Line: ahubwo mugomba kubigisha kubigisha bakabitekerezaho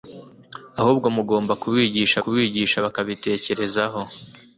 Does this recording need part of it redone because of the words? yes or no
no